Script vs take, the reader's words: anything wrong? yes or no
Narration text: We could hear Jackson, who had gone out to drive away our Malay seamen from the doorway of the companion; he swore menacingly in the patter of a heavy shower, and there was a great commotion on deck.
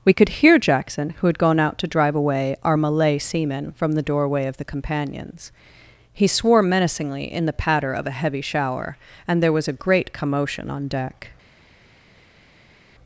yes